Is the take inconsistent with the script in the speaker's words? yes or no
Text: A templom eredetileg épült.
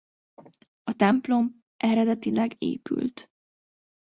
no